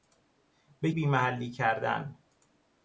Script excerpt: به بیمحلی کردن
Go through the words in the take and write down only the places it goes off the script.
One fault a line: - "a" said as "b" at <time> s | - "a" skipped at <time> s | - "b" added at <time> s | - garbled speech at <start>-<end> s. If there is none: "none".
none